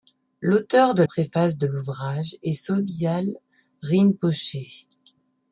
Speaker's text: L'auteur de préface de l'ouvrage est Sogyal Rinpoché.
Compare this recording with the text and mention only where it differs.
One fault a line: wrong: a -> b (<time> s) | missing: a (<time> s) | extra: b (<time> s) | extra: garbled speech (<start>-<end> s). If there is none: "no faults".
no faults